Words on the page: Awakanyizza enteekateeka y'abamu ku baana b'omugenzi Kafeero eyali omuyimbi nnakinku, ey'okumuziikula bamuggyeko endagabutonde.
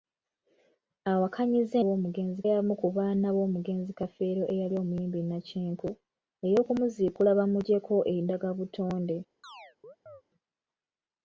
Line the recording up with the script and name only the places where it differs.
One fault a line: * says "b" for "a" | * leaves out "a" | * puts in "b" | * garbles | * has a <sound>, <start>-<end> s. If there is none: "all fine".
* says "b'omugenzi" for "enteekateeka"
* has a chirp, 9.4-10.2 s